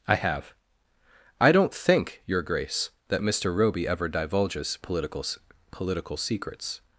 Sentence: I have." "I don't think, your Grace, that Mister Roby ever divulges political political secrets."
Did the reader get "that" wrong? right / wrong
right